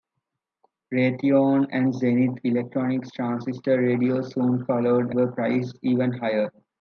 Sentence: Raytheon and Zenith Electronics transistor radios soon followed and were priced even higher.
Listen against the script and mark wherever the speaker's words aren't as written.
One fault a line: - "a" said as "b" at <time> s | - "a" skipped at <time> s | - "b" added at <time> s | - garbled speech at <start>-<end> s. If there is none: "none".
- "and" skipped at 5.1 s